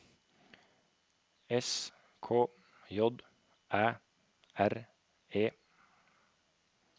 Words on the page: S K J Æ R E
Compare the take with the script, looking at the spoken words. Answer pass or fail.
pass